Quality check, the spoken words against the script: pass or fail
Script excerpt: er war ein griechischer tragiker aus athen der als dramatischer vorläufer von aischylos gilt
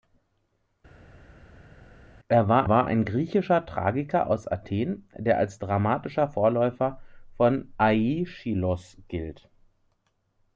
fail